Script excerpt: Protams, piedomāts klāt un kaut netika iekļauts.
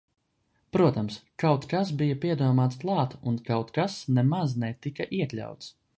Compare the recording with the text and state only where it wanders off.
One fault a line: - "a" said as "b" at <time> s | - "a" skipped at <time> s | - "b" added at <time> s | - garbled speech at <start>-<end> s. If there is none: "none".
- "kaut kas bija" added at 1.4 s
- "kas nemaz" added at 3.8 s